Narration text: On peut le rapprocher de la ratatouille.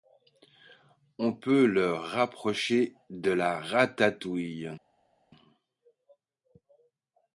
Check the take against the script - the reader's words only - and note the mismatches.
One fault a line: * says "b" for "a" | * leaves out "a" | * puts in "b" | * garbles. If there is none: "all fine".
all fine